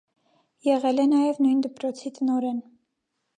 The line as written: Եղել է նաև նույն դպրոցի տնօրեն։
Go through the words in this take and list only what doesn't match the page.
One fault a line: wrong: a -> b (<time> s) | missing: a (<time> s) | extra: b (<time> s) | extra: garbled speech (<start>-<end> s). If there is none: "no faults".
no faults